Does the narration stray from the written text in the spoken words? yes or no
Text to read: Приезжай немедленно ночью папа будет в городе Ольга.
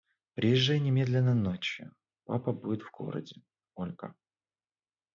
no